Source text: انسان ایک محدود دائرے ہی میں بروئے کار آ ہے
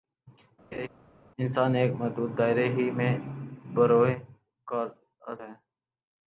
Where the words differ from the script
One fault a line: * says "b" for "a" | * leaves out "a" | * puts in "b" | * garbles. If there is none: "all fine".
all fine